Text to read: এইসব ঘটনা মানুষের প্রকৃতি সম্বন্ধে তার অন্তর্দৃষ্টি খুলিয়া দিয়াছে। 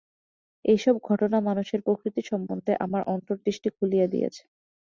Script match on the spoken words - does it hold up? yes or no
no